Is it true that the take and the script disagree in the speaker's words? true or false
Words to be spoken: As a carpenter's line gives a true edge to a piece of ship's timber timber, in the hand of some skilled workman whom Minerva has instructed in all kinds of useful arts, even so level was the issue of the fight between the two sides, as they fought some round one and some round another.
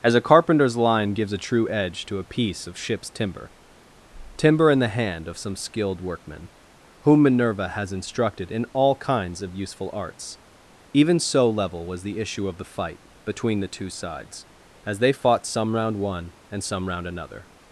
false